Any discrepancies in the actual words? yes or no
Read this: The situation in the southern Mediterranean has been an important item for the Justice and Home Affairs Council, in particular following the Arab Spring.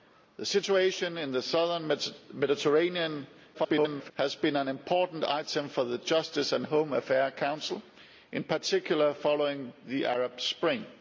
yes